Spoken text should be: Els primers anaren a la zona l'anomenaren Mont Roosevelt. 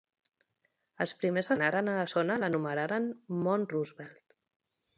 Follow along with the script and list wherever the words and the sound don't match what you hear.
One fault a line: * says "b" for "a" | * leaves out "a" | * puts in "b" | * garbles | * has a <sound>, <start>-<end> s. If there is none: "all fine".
all fine